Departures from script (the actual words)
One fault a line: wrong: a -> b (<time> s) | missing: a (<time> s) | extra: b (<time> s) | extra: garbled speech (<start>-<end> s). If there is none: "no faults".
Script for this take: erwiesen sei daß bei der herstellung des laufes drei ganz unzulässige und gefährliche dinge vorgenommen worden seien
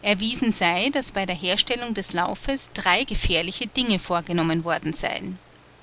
missing: ganz unzulässige und (3.0 s)